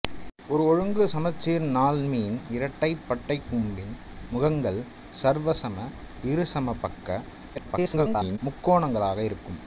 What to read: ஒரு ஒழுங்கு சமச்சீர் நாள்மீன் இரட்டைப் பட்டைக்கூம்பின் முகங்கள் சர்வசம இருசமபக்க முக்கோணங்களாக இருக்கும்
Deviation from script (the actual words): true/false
true